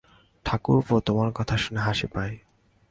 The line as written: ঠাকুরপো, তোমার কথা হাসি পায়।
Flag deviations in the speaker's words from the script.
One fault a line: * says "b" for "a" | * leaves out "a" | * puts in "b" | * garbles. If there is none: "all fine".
* puts in "শুনে"